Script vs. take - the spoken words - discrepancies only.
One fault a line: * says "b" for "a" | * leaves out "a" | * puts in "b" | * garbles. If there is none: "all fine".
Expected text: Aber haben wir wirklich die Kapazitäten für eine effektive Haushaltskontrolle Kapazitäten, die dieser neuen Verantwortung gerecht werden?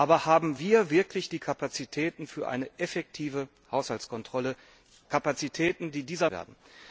* leaves out "neuen Verantwortung gerecht"